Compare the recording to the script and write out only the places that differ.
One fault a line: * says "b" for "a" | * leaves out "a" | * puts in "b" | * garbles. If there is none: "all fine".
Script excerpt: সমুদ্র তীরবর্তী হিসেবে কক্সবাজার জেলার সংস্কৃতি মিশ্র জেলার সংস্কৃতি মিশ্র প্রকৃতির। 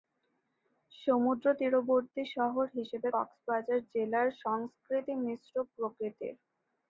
* puts in "শহর"
* leaves out "জেলার সংস্কৃতি মিশ্র"